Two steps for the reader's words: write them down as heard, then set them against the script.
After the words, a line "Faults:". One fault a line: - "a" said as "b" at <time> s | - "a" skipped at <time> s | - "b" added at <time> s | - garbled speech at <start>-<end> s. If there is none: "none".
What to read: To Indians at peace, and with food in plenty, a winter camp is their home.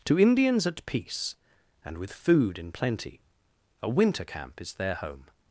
To Indians at peace, and with food in plenty, a winter camp is their home.
Faults:
none